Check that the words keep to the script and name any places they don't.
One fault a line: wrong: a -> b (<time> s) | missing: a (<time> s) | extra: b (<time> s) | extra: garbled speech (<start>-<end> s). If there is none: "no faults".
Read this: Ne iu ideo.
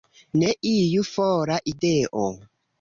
extra: fora (1.1 s)